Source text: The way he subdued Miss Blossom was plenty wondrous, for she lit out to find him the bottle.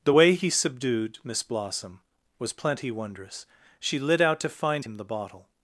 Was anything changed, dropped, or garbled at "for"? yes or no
yes